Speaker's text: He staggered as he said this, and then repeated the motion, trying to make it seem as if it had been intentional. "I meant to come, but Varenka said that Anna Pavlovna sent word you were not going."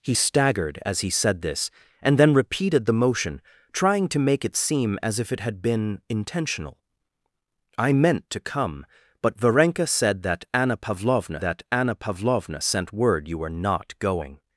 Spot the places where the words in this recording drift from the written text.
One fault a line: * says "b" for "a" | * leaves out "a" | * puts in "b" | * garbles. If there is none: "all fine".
* puts in "that Anna Pavlovna"